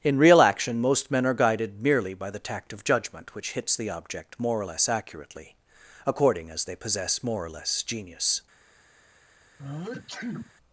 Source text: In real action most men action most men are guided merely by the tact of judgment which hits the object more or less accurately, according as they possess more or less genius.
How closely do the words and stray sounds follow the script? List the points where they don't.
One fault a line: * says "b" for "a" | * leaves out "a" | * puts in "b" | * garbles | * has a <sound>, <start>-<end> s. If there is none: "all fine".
* leaves out "action most men"
* has a sneeze, 9.6-10.5 s